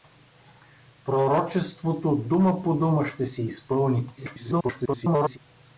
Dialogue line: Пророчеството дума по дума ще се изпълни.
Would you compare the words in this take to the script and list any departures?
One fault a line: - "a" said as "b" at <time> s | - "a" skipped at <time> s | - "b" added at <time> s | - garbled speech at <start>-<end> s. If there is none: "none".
- garbled speech at 4.2-5.4 s